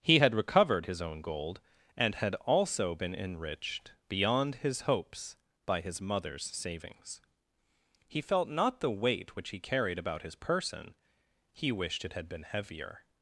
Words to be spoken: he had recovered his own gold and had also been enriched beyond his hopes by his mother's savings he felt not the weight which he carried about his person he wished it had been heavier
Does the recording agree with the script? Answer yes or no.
yes